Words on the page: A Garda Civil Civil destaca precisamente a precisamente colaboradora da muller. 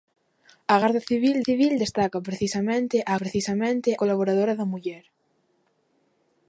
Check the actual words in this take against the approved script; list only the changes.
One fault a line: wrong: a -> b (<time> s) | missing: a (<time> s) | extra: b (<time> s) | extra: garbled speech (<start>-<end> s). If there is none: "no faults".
no faults